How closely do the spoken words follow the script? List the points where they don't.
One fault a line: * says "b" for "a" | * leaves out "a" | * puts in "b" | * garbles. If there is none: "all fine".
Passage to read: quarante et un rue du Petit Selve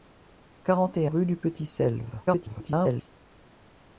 * leaves out "un"
* garbles